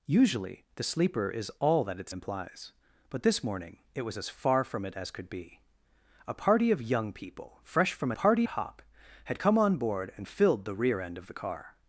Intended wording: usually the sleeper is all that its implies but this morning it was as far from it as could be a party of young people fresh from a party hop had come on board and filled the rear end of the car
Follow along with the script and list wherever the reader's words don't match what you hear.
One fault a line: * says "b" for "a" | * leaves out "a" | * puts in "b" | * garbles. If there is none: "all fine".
all fine